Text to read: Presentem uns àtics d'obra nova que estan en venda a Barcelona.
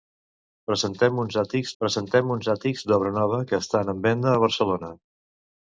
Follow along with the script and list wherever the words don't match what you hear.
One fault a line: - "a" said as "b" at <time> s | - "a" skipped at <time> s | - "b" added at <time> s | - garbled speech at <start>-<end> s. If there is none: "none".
- "presentem uns àtics" added at 1.8 s